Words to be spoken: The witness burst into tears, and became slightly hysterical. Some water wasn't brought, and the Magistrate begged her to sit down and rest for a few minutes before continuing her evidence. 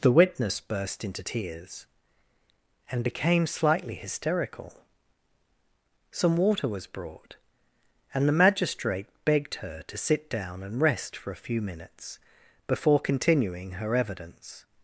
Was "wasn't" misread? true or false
true